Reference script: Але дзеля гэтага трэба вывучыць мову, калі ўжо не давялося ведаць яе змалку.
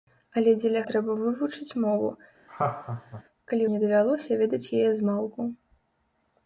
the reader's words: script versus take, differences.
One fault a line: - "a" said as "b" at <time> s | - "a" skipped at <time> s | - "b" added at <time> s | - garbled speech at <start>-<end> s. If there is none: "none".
- "гэтага" skipped at 0.8 s
- "ўжо" skipped at 3.6 s